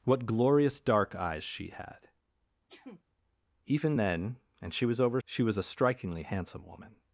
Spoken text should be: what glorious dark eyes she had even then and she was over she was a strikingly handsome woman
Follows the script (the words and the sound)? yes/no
no